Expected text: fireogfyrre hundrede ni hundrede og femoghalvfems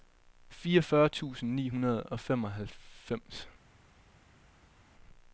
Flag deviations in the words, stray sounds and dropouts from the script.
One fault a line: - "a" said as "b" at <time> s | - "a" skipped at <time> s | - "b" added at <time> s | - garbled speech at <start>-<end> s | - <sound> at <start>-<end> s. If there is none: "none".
- "hundrede" said as "tusind" at 1.1 s